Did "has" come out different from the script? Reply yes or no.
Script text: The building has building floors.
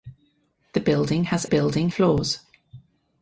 no